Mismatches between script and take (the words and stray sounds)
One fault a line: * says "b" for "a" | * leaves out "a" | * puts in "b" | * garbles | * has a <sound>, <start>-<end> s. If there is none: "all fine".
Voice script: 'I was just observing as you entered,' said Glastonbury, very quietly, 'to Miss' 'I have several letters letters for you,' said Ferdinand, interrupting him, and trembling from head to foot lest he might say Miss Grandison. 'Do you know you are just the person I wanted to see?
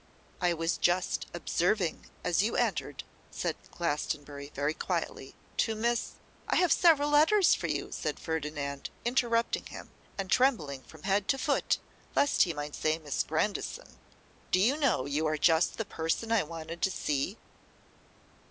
* leaves out "letters"